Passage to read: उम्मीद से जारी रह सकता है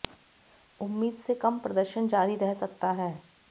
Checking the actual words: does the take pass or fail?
fail